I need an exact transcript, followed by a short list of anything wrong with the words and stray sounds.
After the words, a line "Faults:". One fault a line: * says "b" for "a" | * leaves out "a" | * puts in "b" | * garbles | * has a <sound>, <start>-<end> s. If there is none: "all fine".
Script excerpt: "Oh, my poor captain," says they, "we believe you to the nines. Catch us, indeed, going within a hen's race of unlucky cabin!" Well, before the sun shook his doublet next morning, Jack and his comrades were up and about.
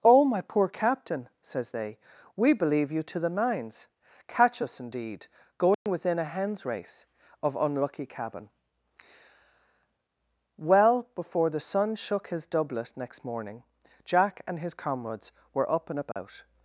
"Oh, my poor captain," says they, "we believe you to the nines. Catch us, indeed, going within a hen's race of unlucky cabin!" Well, before the sun shook his doublet next morning, Jack and his comrades were up and about.
Faults:
* has a dropout, 5.7-5.9 s
* has a dropout, 16.1-16.2 s